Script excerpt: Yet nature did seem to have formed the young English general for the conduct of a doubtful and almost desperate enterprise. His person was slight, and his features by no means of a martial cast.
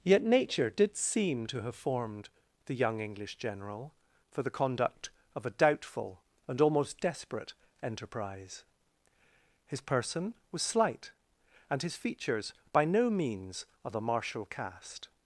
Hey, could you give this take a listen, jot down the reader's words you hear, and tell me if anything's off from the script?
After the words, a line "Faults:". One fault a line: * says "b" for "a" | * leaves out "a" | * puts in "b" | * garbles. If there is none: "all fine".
Yet nature did seem to have formed the young English general for the conduct of a doubtful and almost desperate enterprise. His person was slight, and his features by no means of a martial cast.
Faults:
all fine